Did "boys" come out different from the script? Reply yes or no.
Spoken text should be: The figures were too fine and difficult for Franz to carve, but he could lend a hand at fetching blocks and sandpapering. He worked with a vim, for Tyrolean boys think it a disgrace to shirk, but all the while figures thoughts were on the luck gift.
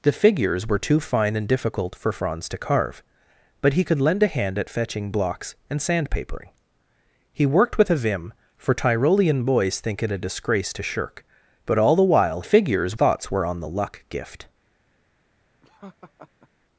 no